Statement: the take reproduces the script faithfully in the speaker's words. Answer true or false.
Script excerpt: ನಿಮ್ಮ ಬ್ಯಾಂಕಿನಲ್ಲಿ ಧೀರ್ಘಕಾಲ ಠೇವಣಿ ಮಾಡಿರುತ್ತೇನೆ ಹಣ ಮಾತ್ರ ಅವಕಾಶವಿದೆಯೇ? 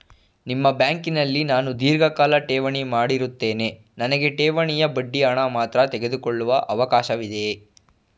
false